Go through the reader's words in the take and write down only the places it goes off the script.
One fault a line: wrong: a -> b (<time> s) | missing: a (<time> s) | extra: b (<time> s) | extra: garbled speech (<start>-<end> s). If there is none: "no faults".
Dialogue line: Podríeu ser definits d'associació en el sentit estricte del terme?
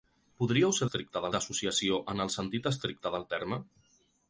wrong: definits -> estricte (0.8 s)